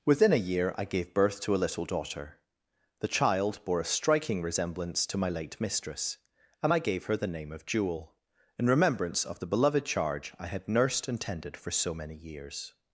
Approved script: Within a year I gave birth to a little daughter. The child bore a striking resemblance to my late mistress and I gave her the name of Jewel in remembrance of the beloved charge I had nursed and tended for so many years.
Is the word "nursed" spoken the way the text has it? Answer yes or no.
yes